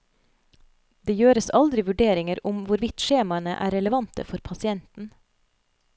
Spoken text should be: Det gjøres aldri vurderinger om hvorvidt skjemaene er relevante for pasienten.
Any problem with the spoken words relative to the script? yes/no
no